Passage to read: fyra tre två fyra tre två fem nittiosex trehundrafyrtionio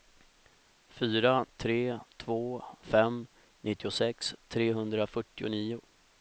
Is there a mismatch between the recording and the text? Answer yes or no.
yes